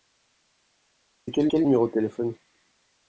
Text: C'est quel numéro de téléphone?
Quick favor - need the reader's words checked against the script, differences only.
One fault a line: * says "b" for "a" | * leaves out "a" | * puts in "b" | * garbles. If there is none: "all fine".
* puts in "quel"